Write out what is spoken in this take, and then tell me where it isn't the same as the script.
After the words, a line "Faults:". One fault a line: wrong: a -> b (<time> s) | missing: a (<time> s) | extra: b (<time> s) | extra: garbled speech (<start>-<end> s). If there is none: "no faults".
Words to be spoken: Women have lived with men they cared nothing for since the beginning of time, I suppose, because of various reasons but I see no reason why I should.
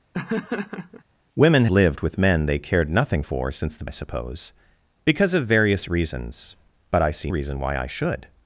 Women lived with men they cared nothing for since the I suppose, because of various reasons but I see reason why I should.
Faults:
missing: have (1.6 s)
missing: beginning of time (3.8 s)
missing: no (7.3 s)